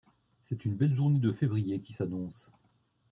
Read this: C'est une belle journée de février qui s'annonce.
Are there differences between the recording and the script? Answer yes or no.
no